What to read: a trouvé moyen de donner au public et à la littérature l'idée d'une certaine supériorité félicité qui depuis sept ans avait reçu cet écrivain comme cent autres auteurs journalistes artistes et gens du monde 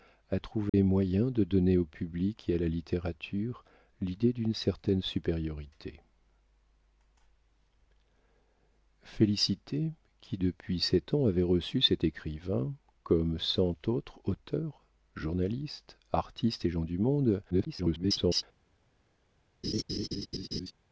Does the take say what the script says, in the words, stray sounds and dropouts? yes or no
no